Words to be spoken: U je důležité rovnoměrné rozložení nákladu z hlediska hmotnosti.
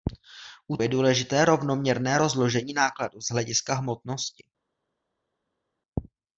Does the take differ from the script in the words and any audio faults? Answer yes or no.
no